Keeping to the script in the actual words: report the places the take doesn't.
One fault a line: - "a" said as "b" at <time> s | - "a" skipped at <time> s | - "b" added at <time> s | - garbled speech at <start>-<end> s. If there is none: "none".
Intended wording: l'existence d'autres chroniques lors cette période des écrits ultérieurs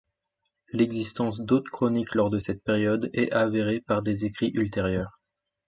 - "de" added at 2.3 s
- "est avérée par" added at 3.1 s